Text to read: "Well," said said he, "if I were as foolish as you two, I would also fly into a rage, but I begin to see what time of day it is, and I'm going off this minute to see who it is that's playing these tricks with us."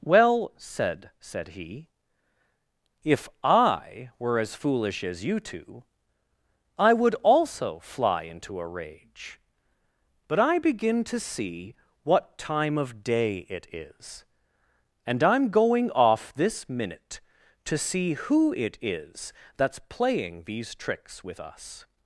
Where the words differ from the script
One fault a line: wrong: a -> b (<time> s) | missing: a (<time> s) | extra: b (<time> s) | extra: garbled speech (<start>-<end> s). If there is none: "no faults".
no faults